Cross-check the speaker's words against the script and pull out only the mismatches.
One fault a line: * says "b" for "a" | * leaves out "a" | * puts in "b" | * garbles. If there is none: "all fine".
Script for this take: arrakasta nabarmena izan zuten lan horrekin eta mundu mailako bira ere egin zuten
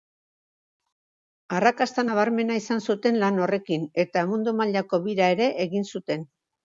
all fine